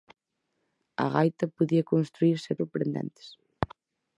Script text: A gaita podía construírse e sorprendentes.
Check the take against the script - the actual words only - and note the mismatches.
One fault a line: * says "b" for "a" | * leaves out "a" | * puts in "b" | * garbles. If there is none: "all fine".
all fine